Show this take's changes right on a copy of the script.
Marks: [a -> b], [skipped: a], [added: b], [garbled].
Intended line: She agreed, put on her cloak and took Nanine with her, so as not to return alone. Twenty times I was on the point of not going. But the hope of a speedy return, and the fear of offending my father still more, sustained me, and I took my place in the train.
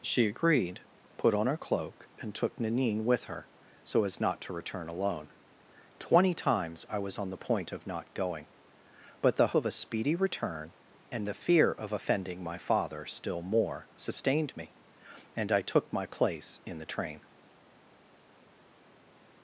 She agreed, put on her cloak and took Nanine with her, so as not to return alone. Twenty times I was on the point of not going. But the [skipped: hope] of a speedy return, and the fear of offending my father still more, sustained me, and I took my place in the train.